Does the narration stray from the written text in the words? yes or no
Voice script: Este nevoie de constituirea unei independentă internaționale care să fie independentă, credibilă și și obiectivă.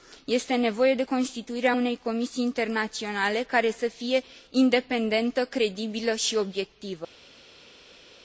yes